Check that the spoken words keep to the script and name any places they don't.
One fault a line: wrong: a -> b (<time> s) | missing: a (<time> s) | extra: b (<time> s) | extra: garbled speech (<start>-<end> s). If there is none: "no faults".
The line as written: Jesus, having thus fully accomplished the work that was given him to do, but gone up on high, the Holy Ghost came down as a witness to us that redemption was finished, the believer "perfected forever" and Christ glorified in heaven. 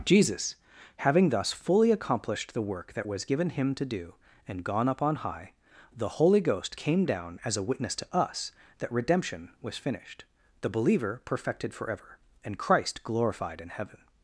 wrong: but -> and (4.5 s)